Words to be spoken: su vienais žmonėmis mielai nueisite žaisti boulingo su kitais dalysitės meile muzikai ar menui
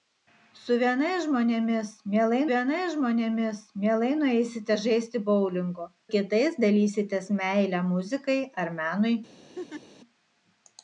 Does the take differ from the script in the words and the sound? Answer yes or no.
yes